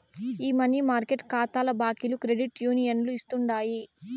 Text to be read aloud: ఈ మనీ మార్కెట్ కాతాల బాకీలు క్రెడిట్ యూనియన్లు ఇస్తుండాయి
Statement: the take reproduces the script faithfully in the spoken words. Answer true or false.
true